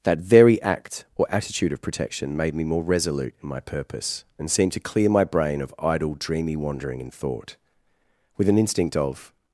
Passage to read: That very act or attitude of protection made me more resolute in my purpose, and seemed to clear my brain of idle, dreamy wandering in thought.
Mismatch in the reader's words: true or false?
true